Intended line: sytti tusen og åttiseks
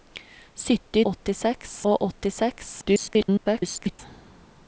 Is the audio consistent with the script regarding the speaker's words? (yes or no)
no